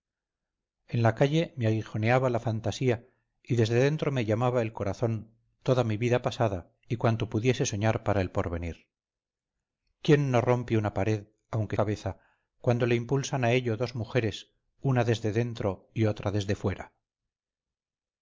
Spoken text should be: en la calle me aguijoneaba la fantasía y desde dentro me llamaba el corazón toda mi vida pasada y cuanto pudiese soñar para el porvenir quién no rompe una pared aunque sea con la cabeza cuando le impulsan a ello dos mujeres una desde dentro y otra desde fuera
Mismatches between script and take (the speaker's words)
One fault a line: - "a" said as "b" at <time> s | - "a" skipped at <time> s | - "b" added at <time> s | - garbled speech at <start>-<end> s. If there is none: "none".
- "sea con la" skipped at 11.8 s